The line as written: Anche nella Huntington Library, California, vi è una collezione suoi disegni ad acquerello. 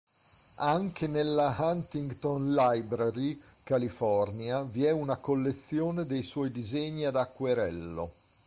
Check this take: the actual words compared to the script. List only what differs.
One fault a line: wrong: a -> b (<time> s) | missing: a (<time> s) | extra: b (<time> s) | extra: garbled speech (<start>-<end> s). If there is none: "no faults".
extra: dei (6.0 s)